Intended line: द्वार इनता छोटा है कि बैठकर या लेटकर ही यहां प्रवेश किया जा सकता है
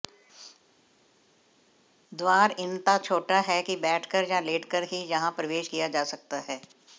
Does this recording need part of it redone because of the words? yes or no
no